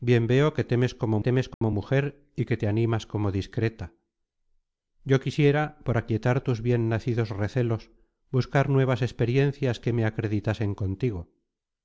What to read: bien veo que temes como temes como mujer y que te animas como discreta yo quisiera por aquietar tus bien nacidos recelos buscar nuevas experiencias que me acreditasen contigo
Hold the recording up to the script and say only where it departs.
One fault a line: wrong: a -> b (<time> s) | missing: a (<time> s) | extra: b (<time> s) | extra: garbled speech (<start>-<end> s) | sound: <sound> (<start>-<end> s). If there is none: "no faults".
sound: dropout (1.5-1.6 s)